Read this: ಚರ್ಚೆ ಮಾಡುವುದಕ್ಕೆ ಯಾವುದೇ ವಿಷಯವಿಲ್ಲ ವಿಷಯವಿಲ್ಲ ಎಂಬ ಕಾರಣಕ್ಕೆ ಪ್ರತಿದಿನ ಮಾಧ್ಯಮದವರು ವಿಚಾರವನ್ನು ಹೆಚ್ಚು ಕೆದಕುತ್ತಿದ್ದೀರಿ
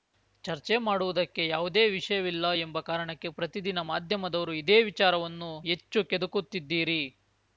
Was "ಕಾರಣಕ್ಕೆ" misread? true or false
false